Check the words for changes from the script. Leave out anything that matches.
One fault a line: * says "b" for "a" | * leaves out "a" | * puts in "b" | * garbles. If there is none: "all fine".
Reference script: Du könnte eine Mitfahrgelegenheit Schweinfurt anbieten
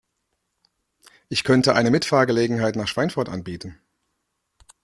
* says "Ich" for "Du"
* puts in "nach"